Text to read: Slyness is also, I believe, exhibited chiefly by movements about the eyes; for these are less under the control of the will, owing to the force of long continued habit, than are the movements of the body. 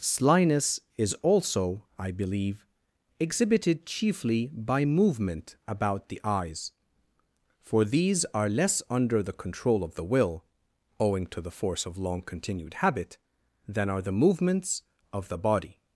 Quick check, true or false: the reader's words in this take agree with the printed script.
false